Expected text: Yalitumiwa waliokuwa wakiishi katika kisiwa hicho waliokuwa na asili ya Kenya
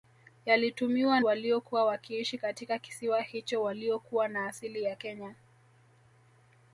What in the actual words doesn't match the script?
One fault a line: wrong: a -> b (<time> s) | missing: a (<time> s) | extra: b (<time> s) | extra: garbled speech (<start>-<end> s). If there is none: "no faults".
no faults